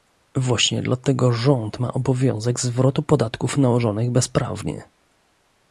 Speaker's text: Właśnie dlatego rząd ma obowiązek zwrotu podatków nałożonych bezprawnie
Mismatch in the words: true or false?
false